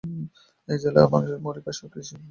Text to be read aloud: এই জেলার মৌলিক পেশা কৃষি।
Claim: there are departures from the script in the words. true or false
true